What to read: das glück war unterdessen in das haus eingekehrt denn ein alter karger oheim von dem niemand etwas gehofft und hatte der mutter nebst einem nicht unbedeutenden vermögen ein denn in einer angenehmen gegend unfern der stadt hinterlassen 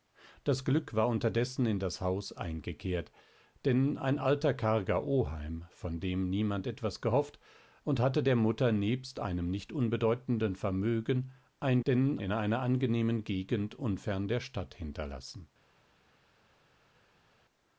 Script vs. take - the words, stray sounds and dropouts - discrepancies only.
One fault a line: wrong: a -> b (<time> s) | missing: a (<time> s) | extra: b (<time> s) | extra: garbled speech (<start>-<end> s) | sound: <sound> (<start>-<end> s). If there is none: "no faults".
no faults